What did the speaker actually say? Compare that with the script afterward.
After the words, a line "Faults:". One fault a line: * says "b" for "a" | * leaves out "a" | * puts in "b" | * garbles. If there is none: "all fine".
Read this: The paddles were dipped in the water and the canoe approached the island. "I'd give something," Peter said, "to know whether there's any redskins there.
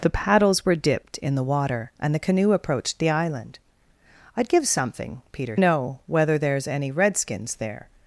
The paddles were dipped in the water and the canoe approached the island. "I'd give something," Peter know whether there's any redskins there.
Faults:
* leaves out "said to"